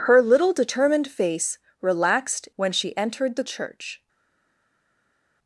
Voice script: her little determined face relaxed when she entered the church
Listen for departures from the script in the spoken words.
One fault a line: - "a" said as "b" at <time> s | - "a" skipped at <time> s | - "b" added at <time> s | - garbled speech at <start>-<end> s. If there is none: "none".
none